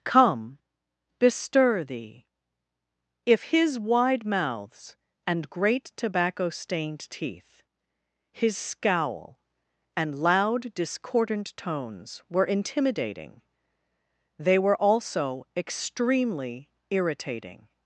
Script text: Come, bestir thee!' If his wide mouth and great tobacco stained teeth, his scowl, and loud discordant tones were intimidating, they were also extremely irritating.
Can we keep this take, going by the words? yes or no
no